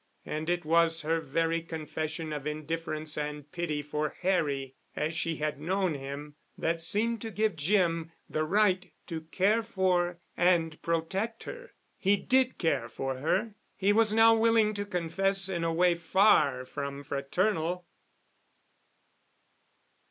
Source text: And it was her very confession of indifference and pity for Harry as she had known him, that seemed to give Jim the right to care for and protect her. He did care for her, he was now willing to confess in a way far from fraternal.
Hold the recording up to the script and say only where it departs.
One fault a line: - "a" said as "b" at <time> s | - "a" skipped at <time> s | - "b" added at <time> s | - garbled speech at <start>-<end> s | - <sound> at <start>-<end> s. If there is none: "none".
none